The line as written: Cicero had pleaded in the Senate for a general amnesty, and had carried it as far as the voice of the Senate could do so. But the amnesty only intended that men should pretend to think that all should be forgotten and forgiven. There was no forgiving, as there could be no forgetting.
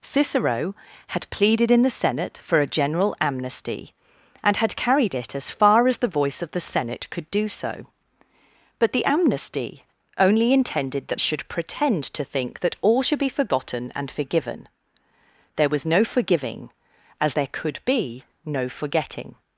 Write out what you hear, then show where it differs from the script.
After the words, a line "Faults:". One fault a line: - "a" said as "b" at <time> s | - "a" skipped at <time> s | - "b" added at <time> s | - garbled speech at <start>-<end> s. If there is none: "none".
Cicero had pleaded in the Senate for a general amnesty, and had carried it as far as the voice of the Senate could do so. But the amnesty only intended that should pretend to think that all should be forgotten and forgiven. There was no forgiving, as there could be no forgetting.
Faults:
- "men" skipped at 11.2 s